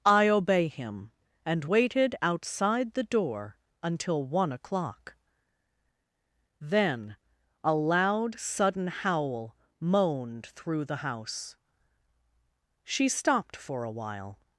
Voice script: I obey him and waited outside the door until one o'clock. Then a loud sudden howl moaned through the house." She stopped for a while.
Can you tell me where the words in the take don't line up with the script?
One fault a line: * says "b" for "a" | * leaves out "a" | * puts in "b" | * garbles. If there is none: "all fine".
all fine